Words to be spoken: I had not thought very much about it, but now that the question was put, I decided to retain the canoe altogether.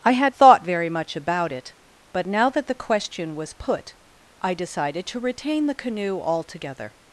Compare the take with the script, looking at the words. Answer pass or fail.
fail